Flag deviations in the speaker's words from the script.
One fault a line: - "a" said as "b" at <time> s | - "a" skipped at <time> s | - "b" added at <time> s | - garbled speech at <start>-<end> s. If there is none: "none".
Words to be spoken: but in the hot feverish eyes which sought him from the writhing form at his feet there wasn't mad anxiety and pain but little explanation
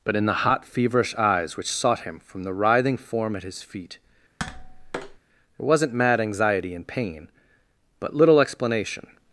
none